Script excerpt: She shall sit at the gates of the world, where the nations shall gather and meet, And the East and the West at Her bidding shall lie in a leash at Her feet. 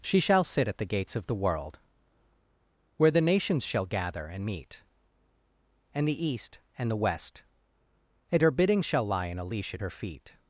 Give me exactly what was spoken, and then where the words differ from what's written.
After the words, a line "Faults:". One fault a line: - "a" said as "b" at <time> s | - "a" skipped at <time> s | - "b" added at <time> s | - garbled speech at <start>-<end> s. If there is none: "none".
She shall sit at the gates of the world, where the nations shall gather and meet, And the East and the West and Her bidding shall lie in a leash at Her feet.
Faults:
- "at" said as "and" at 8.3 s